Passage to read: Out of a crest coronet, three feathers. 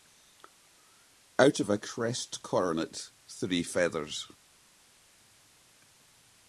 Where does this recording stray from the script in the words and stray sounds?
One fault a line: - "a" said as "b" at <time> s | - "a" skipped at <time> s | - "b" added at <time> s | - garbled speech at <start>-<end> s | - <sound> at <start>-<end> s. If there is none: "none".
none